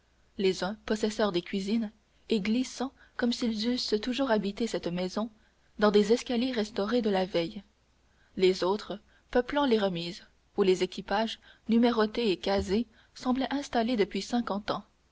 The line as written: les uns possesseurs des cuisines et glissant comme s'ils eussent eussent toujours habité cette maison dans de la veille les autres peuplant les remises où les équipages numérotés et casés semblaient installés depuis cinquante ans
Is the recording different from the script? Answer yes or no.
yes